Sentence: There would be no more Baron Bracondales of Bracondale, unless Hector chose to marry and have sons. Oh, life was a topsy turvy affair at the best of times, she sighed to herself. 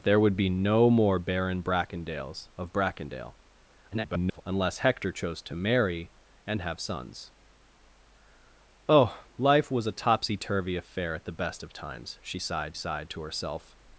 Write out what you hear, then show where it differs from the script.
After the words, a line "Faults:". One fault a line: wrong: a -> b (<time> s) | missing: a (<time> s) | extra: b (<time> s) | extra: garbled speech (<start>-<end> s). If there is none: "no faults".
There would be no more Baron Bracondales of Bracondale, [garbled] unless Hector chose to marry and have sons. Oh, life was a topsy turvy affair at the best of times, she sighed sighed to herself.
Faults:
extra: garbled speech (3.9-4.4 s)
extra: sighed (12.7 s)